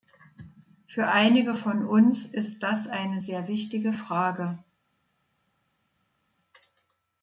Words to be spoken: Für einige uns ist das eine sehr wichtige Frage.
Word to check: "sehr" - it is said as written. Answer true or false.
true